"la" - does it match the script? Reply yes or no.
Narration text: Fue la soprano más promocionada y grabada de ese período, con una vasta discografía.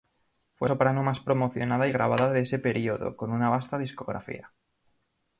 no